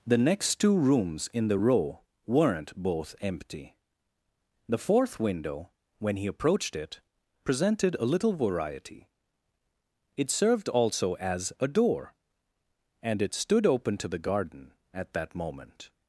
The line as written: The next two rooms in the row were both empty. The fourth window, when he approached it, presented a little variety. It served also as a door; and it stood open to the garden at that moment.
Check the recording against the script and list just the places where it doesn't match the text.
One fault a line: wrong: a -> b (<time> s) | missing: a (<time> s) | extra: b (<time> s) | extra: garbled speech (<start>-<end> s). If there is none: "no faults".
wrong: were -> weren't (2.3 s)